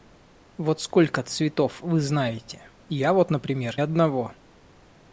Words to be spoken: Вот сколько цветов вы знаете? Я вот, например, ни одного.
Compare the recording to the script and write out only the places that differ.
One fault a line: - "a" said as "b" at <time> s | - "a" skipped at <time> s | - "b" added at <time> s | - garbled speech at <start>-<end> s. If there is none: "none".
- "ни" skipped at 3.8 s